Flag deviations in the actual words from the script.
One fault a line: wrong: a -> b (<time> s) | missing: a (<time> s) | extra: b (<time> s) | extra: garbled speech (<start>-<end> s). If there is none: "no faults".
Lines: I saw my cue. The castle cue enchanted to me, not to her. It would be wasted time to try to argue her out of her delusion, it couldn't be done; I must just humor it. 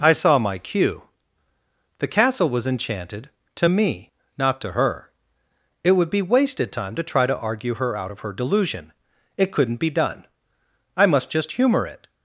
wrong: cue -> was (2.5 s)